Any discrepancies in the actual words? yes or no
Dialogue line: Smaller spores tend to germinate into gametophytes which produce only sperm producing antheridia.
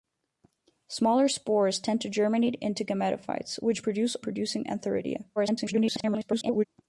yes